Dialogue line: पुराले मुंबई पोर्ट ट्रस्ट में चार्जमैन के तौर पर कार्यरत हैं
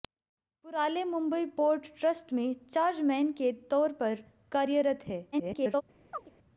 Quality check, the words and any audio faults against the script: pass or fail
fail